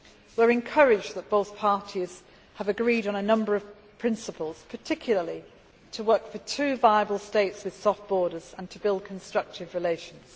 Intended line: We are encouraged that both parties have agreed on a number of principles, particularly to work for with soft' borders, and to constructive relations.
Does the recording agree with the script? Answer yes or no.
no